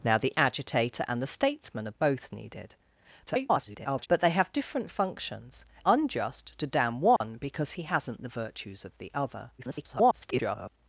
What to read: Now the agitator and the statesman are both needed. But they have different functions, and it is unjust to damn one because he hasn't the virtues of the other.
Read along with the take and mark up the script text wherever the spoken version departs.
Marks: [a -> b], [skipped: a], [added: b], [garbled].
Now the agitator and the statesman are both needed. [garbled] But they have different functions, [skipped: and it is] unjust to damn one because he hasn't the virtues of the other. [garbled]